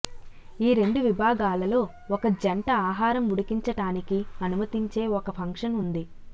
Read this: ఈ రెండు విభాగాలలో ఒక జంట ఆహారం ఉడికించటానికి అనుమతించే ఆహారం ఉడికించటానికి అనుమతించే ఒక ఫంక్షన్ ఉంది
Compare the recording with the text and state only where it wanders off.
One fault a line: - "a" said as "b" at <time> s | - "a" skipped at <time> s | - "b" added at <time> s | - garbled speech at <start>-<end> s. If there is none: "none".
- "ఆహారం ఉడికించటానికి అనుమతించే" skipped at 5.0 s